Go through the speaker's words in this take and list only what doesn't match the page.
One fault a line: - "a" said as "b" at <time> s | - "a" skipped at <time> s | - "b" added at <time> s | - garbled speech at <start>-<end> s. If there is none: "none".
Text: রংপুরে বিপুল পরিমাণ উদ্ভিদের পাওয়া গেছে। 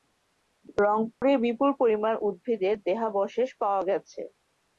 - "দেহাবশেষ" added at 2.9 s